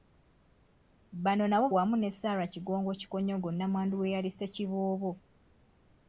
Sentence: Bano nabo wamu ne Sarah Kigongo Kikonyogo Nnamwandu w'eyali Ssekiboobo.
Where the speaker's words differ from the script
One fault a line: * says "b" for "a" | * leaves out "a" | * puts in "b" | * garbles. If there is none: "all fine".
all fine